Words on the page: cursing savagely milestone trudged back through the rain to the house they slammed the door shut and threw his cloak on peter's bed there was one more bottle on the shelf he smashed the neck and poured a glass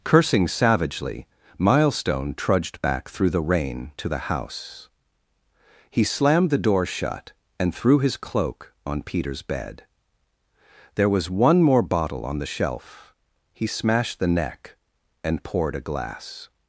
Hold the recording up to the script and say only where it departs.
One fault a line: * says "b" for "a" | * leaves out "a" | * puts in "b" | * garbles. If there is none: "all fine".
* says "he" for "they"